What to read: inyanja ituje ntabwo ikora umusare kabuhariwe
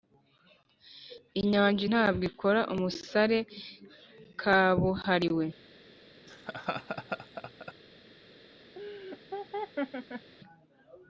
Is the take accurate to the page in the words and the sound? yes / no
no